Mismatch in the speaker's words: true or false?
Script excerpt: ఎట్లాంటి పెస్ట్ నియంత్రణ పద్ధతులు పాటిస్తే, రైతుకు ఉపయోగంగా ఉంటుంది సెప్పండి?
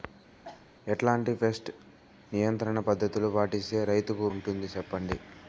true